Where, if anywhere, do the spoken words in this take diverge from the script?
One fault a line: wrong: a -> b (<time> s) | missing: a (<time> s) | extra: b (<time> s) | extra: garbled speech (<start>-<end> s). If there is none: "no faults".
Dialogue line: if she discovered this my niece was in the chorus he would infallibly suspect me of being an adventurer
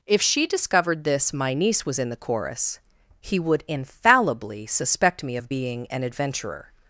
no faults